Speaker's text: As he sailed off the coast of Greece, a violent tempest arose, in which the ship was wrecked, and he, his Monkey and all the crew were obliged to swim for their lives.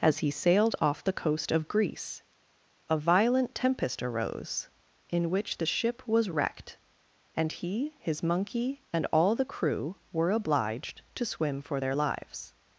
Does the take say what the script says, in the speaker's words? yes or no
yes